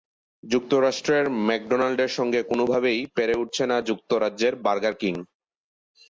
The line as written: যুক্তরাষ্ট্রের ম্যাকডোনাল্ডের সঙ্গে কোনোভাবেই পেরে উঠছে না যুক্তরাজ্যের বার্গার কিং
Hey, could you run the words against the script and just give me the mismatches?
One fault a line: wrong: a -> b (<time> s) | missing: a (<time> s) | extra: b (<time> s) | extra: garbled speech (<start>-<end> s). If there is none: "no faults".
no faults